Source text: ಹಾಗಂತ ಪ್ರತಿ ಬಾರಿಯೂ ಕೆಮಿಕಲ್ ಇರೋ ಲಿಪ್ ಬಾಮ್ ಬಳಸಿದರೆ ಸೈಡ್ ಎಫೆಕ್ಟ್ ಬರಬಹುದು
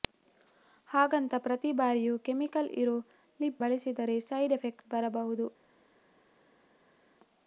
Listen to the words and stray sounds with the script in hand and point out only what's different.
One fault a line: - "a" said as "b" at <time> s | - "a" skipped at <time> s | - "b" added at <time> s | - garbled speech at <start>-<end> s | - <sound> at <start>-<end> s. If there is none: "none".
- "ಬಾಮ್" skipped at 3.6 s